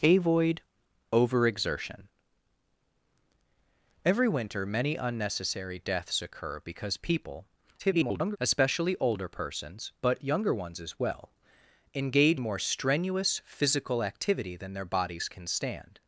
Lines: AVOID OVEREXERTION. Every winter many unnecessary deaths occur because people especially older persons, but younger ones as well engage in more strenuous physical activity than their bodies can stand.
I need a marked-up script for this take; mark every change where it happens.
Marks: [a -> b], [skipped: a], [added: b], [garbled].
AVOID OVEREXERTION. Every winter many unnecessary deaths occur because people [garbled] especially older persons, but younger ones as well engage [skipped: in] more strenuous physical activity than their bodies can stand.